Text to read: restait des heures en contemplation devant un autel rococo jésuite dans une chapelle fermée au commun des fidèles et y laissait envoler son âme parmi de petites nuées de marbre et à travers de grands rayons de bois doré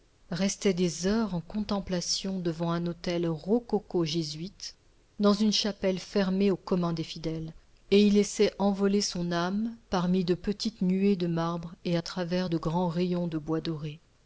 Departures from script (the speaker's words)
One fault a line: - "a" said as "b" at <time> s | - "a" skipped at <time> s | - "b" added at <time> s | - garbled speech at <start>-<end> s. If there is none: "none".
none